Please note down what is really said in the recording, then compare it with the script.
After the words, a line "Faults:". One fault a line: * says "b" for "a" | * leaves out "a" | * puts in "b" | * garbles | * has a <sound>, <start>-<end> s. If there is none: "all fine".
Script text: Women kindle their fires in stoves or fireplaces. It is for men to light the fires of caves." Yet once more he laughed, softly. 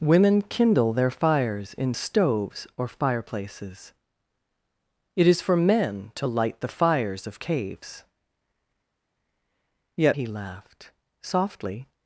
Women kindle their fires in stoves or fireplaces. It is for men to light the fires of caves." Yet he laughed, softly.
Faults:
* leaves out "once more"